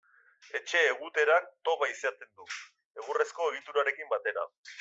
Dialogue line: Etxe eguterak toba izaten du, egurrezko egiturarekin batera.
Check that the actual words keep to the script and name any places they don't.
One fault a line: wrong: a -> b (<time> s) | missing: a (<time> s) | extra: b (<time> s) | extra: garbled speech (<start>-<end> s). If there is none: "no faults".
no faults